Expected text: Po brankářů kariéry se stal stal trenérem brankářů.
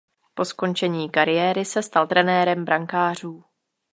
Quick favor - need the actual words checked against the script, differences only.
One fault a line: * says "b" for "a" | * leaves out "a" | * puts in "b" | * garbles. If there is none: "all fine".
* says "skončení" for "brankářů"
* leaves out "stal"